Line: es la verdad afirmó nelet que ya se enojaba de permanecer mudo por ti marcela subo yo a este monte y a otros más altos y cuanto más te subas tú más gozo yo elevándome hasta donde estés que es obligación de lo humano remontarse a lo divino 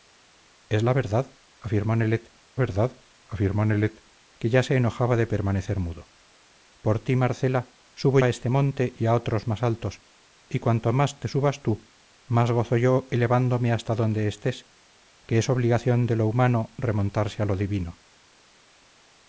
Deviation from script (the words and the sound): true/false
true